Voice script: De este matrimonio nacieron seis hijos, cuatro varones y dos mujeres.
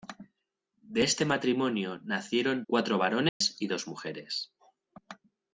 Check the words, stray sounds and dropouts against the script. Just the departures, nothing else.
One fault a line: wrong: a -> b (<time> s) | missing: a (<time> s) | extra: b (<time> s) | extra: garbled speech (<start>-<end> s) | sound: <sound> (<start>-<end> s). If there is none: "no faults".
missing: seis hijos (2.6 s)
sound: dropout (3.3-3.4 s)